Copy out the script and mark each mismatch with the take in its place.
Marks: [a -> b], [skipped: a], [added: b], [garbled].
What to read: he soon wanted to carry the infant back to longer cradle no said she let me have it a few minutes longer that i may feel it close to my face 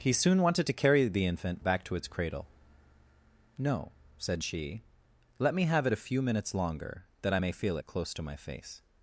he soon wanted to carry the infant back to [longer -> its] cradle no said she let me have it a few minutes longer that i may feel it close to my face